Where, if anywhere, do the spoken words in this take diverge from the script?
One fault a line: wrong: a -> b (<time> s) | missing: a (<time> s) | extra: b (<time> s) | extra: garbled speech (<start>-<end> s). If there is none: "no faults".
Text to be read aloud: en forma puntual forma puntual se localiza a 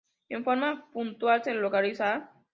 missing: forma puntual (1.4 s)